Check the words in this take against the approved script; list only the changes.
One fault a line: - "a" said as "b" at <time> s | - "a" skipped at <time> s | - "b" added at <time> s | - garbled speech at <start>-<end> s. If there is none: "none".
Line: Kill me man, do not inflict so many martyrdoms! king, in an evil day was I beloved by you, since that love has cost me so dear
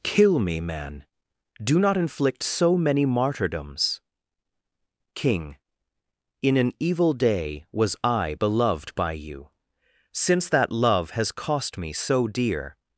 none